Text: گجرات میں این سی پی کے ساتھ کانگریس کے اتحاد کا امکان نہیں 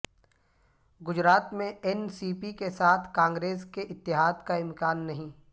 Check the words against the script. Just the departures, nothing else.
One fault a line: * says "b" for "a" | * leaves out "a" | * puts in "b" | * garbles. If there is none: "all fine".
all fine